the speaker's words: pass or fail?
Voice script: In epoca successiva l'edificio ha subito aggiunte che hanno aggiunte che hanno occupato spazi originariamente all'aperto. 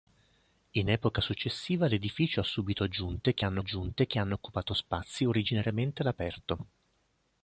pass